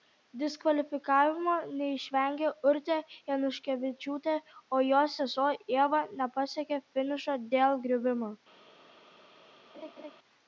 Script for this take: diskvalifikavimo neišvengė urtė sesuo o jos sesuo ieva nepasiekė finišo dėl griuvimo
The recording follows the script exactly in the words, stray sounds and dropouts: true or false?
false